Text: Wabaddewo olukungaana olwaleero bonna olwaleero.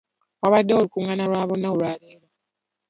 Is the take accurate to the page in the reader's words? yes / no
no